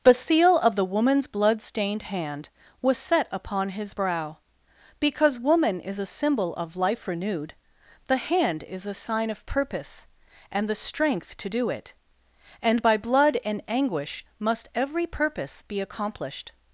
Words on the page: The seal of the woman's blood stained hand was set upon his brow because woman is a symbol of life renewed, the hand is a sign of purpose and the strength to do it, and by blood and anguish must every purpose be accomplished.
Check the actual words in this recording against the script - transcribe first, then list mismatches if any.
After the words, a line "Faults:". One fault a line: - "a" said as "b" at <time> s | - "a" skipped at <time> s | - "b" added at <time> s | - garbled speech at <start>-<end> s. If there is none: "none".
The seal of the woman's blood stained hand was set upon his brow because woman is a symbol of life renewed, the hand is a sign of purpose and the strength to do it, and by blood and anguish must every purpose be accomplished.
Faults:
none